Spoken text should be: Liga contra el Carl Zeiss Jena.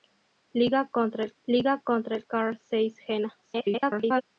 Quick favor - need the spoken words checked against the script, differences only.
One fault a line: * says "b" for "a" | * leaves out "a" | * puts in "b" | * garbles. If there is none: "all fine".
* puts in "liga contra el"
* garbles